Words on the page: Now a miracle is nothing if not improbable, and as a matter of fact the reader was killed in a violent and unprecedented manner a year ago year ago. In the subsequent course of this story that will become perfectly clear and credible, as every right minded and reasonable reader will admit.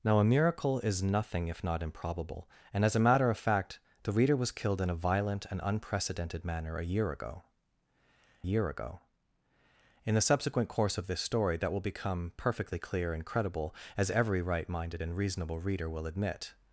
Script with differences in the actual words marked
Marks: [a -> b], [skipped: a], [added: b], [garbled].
Now a miracle is nothing if not improbable, and as a matter of fact the reader was killed in a violent and unprecedented manner a year ago year ago. In the subsequent course of this story that will become perfectly clear and credible, as every right minded and reasonable reader will admit.